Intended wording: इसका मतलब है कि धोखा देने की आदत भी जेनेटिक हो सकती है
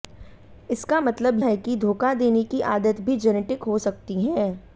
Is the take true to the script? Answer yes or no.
yes